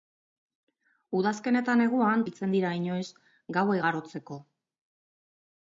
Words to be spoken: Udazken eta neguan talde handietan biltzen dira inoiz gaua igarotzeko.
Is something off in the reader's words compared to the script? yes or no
yes